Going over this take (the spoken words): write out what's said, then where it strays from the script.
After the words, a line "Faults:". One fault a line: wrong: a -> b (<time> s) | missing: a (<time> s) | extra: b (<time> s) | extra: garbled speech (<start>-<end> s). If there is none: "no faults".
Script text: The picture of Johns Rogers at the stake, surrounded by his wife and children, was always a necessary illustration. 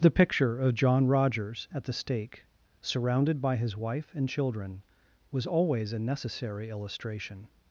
The picture of John Rogers at the stake, surrounded by his wife and children, was always a necessary illustration.
Faults:
wrong: Johns -> John (0.7 s)